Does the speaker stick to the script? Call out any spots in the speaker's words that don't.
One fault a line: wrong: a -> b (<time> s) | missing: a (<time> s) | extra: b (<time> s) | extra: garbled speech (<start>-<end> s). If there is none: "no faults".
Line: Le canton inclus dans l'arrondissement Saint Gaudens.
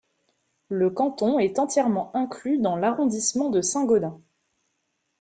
extra: est entièrement (1.4 s)
extra: de (3.5 s)